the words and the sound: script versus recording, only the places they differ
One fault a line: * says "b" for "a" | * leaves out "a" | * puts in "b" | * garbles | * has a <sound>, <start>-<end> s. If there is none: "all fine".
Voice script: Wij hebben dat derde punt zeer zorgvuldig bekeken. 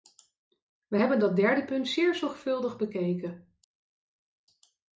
all fine